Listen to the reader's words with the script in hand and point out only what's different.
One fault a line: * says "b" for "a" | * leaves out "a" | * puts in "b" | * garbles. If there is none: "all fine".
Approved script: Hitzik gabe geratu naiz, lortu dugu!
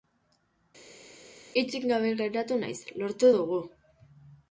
all fine